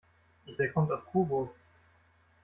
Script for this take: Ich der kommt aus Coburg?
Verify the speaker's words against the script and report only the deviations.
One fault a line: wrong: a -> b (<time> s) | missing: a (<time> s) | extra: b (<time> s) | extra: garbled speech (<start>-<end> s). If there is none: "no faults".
no faults